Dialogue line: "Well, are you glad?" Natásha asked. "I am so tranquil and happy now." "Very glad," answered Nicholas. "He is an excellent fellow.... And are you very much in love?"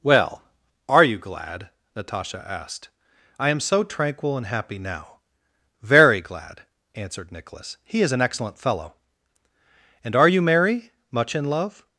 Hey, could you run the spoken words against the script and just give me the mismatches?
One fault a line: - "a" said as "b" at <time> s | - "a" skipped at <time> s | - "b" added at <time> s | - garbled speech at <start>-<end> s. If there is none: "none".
- "very" said as "merry" at 10.4 s